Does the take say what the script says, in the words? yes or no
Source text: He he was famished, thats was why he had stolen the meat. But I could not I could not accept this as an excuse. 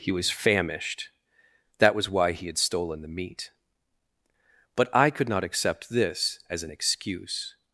no